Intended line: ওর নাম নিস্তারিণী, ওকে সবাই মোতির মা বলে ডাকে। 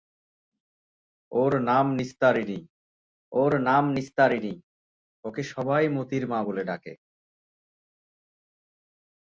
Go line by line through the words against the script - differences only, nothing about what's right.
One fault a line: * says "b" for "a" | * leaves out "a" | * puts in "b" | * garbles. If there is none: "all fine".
* puts in "ওর নাম নিস্তারিণী"